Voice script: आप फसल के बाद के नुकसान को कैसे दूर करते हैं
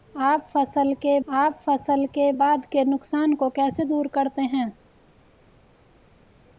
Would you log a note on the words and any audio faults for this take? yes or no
yes